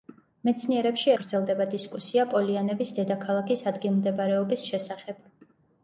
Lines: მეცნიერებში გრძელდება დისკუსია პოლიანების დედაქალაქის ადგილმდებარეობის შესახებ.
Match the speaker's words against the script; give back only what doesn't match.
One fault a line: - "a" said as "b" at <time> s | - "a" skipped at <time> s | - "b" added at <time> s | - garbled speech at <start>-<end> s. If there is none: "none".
none